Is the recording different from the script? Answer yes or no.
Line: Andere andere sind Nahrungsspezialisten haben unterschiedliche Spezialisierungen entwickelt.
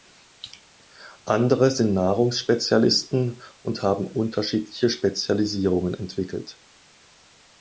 yes